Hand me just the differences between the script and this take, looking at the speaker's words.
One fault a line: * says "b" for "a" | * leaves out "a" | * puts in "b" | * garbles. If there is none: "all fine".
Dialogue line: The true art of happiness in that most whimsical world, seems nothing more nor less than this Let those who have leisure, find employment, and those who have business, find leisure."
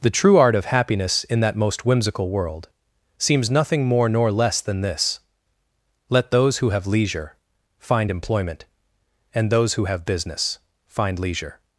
all fine